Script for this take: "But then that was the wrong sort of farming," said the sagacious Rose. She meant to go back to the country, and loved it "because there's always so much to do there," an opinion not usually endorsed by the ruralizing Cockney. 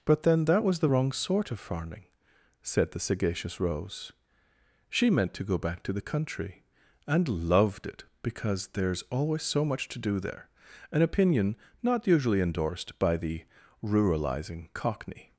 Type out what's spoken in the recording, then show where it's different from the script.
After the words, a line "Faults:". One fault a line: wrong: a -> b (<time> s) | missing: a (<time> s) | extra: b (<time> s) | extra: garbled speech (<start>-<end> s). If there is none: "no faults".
"But then that was the wrong sort of farming," said the sagacious Rose. She meant to go back to the country, and loved it "because there's always so much to do there," an opinion not usually endorsed by the ruralizing Cockney.
Faults:
no faults